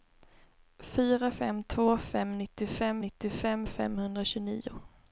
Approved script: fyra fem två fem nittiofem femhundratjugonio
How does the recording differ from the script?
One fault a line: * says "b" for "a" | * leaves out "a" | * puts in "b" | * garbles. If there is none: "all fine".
* puts in "nittiofem"